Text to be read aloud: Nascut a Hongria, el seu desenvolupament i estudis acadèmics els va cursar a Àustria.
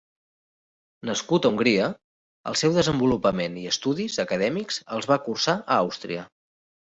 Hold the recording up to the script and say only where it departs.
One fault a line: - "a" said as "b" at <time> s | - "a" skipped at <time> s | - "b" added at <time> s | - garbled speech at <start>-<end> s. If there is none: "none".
none